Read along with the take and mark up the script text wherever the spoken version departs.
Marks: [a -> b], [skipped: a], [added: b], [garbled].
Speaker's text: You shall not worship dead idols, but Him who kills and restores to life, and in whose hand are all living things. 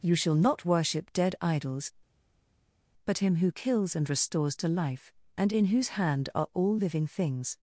You shall not worship dead idols, but Him who kills and restores to life, and in whose hand are all living things.